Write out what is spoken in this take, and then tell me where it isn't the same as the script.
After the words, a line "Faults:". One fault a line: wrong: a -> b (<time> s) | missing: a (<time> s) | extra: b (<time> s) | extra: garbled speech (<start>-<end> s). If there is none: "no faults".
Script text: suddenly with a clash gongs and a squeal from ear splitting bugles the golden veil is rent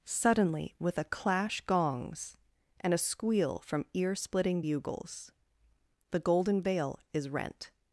suddenly with a clash gongs and a squeal from ear splitting bugles the golden veil is rent
Faults:
no faults